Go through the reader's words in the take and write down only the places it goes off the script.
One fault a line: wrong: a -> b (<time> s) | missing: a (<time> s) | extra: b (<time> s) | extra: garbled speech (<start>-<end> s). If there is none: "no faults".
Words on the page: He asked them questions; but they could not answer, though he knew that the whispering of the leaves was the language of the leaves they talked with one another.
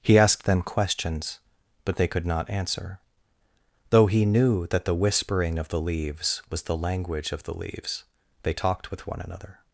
no faults